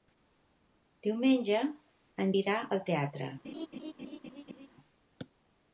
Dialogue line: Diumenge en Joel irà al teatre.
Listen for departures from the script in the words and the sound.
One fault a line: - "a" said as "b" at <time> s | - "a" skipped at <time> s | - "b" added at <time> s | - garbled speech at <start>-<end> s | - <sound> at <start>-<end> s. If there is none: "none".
- "Joel" skipped at 2.3 s
- laugh at 3.4-4.7 s